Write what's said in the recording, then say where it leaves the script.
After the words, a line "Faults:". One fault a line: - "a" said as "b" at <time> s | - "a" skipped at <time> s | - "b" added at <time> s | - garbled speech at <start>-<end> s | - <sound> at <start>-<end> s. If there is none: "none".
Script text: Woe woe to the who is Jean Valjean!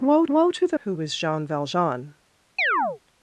Woe woe to the who is Jean Valjean!
Faults:
- chirp at 2.6-3.0 s